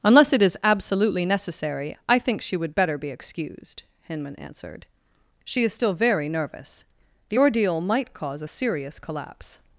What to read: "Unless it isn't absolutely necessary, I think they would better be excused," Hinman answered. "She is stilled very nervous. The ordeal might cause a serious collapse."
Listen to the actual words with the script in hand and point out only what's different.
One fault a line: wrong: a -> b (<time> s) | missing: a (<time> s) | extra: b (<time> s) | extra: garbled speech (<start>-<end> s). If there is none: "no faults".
wrong: isn't -> is (0.4 s)
wrong: they -> she (2.4 s)
wrong: stilled -> still (5.7 s)